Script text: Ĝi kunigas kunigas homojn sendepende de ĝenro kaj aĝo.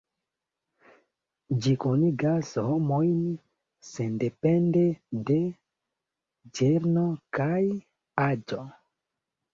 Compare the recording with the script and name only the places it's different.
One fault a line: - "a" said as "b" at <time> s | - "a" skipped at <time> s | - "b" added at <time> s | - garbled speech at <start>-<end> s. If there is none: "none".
- "kunigas" skipped at 2.5 s